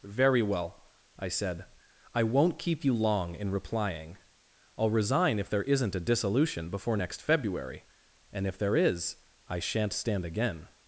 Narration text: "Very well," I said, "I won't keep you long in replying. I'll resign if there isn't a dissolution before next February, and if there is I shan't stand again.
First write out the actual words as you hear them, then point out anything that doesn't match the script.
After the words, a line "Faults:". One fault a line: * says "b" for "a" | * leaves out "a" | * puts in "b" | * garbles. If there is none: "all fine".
"Very well," I said, "I won't keep you long in replying. I'll resign if there isn't a dissolution before next February, and if there is I shan't stand again.
Faults:
all fine